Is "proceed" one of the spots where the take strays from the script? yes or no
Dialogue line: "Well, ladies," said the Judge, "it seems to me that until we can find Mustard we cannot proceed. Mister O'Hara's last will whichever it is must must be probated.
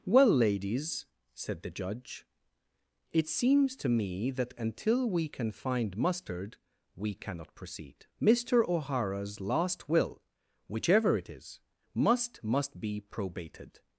no